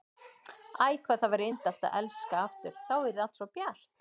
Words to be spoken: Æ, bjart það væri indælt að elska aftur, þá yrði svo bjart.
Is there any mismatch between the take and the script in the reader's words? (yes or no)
yes